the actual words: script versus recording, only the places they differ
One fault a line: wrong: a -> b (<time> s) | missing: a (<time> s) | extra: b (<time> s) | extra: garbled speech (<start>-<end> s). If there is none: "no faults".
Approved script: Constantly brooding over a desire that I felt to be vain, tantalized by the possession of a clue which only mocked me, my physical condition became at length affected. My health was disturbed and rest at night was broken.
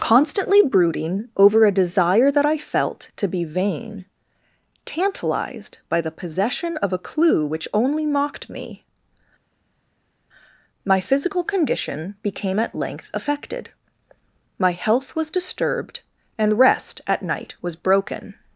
no faults